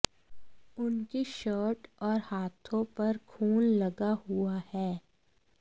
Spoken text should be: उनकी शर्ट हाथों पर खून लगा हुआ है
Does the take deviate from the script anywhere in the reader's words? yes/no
yes